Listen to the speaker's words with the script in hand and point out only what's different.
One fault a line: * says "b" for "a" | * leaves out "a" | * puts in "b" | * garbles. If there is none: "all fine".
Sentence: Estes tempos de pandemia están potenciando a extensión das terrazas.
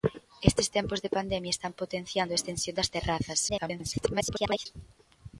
* garbles